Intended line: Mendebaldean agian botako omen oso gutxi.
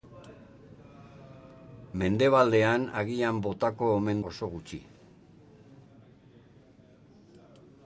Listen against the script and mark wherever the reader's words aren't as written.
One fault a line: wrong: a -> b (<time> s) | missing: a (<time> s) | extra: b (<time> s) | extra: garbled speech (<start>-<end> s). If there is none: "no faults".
no faults